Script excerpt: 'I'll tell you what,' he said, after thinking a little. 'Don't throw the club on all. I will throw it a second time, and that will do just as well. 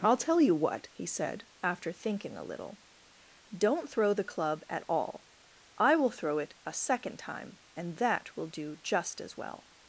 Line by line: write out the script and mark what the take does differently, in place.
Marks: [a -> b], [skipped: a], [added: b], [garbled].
'I'll tell you what,' he said, after thinking a little. 'Don't throw the club [on -> at] all. I will throw it a second time, and that will do just as well.